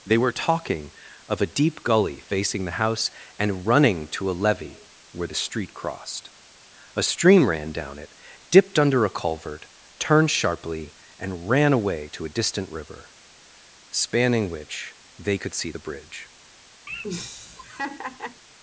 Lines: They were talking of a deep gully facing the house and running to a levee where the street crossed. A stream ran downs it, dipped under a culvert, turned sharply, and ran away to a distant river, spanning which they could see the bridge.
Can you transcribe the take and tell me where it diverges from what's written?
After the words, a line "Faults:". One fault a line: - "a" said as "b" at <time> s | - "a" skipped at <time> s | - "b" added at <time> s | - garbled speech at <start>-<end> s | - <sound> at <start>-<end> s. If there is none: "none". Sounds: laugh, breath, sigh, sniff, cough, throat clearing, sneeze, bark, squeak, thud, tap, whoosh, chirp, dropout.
They were talking of a deep gully facing the house and running to a levee where the street crossed. A stream ran down it, dipped under a culvert, turned sharply, and ran away to a distant river, spanning which they could see the bridge.
Faults:
- "downs" said as "down" at 7.7 s
- laugh at 16.9-18.4 s